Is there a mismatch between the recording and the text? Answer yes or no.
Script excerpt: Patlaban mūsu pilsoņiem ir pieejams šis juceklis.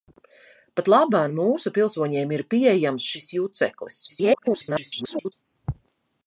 yes